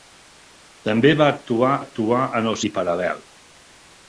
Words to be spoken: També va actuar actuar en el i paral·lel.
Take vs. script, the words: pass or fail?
pass